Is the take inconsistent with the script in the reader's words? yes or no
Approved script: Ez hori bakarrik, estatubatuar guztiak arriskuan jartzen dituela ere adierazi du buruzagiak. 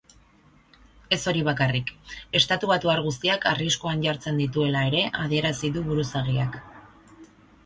no